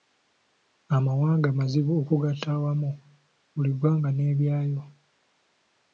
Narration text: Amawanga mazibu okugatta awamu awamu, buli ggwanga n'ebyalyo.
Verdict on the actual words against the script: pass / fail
fail